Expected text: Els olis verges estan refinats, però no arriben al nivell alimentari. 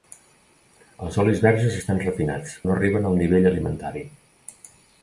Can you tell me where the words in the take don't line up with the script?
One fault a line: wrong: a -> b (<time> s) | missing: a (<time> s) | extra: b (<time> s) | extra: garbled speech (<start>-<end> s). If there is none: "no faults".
missing: però (2.6 s)